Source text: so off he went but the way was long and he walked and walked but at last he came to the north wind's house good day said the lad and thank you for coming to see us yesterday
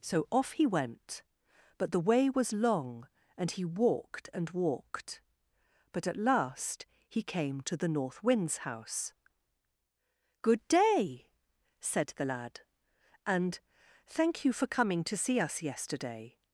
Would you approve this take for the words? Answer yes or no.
yes